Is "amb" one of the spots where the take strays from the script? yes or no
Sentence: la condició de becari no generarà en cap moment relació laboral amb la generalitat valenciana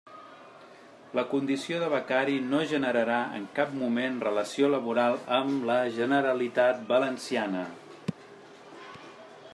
no